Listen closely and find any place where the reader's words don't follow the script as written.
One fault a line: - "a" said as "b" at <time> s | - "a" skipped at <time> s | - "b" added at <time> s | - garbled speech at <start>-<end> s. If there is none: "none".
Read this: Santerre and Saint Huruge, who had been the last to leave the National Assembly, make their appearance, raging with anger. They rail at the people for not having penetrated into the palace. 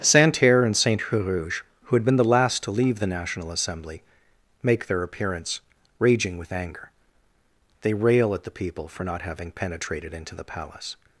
none